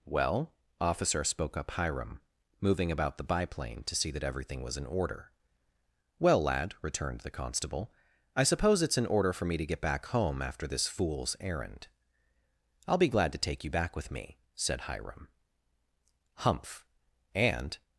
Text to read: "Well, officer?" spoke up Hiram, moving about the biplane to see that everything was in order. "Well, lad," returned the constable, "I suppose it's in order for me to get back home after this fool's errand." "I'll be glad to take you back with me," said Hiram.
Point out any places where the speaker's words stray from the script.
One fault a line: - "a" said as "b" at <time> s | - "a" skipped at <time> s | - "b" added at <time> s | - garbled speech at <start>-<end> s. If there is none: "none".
- "Humph and" added at 16.4 s